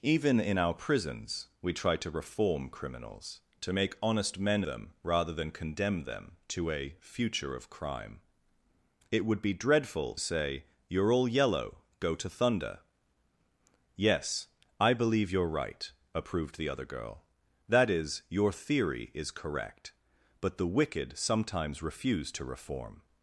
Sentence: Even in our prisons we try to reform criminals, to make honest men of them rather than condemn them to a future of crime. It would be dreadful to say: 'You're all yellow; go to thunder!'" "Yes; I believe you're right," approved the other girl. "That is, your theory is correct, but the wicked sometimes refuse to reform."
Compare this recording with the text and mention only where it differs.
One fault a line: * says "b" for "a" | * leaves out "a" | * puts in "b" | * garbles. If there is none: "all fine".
* leaves out "of"
* leaves out "to"